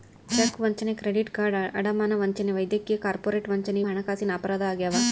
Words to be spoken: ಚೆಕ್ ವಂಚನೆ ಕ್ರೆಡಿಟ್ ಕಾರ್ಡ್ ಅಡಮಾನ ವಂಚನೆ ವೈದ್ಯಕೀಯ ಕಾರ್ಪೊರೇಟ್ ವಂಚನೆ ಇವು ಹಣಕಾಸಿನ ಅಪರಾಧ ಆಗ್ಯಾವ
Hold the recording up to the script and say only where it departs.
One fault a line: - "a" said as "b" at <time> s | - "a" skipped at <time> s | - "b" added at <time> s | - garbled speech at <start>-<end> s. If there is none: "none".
- "ಇವು" skipped at 3.8 s